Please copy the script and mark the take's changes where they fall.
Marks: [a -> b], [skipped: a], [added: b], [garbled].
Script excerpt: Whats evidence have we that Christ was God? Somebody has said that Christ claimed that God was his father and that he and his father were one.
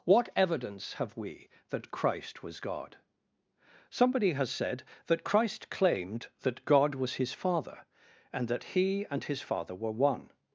[Whats -> What] evidence have we that Christ was God? Somebody has said that Christ claimed that God was his father and that he and his father were one.